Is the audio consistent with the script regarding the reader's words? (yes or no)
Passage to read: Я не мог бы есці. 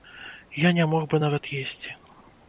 no